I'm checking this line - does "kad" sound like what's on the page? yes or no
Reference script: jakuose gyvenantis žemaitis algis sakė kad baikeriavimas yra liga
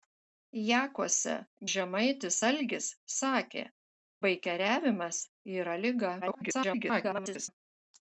no